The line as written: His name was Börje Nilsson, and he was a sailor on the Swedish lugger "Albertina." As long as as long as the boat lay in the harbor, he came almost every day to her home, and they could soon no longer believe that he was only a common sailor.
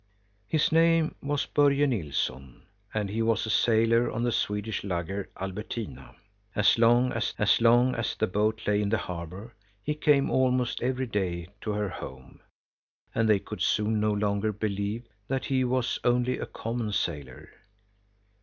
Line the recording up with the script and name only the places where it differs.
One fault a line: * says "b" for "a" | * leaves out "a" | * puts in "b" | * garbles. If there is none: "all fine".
all fine